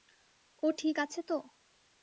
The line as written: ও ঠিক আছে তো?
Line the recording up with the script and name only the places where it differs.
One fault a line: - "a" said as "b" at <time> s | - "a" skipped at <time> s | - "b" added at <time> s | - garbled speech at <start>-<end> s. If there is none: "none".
none